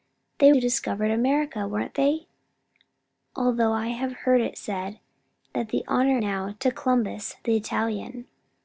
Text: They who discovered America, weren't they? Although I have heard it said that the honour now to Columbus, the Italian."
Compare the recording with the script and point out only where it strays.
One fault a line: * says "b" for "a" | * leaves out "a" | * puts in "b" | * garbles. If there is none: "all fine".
all fine